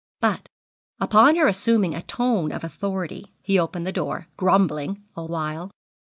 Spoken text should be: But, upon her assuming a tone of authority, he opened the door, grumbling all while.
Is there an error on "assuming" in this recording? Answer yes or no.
no